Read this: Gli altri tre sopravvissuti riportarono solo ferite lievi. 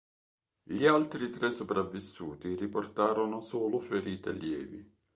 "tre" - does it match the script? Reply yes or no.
yes